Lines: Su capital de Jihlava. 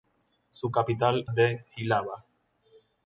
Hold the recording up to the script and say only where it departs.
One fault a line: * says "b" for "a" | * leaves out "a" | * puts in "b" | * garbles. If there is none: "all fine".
all fine